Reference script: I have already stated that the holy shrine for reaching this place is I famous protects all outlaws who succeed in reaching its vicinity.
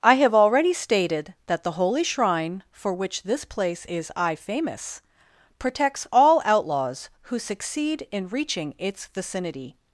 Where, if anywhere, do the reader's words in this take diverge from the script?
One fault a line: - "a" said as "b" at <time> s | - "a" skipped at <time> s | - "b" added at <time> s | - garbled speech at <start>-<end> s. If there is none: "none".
- "reaching" said as "which" at 2.9 s